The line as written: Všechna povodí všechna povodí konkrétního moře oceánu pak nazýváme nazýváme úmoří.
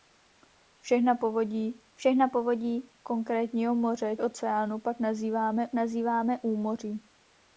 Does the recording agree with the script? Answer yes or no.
yes